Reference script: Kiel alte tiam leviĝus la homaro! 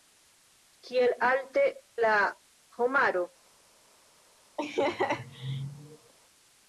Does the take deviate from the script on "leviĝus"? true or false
true